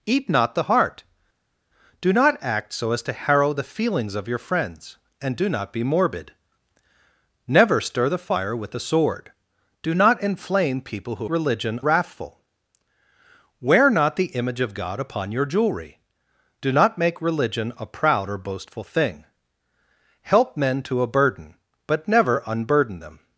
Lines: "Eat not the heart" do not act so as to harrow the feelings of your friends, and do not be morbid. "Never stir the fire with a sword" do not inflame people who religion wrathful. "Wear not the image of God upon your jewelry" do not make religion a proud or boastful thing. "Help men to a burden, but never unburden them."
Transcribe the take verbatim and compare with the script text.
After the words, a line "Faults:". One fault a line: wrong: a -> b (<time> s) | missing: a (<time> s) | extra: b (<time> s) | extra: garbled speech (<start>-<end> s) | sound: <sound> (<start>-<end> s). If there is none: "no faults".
"Eat not the heart" do not act so as to harrow the feelings of your friends, and do not be morbid. "Never stir the fire with a sword" do not inflame people who religion wrathful. "Wear not the image of God upon your jewelry" do not make religion a proud or boastful thing. "Help men to a burden, but never unburden them."
Faults:
no faults